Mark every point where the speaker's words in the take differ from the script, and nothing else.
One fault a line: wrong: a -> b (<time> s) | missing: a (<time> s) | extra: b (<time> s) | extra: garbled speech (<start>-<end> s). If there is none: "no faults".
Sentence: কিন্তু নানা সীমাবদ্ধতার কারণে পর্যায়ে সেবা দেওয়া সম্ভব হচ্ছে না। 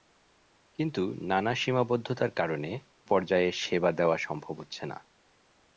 no faults